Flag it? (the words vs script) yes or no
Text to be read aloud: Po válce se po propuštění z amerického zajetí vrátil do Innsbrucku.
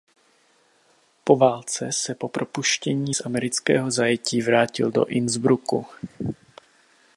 no